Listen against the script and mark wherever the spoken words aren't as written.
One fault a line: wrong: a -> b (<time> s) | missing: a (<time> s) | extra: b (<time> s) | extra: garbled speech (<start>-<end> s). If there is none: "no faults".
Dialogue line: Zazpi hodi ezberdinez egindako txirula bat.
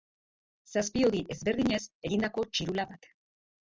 no faults